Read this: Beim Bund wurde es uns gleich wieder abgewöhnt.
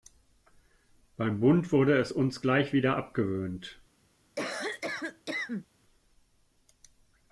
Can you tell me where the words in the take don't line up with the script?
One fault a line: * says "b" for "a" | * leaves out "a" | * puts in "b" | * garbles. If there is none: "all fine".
all fine